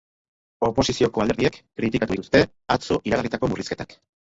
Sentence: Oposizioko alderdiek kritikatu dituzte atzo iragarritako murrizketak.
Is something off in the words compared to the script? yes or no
no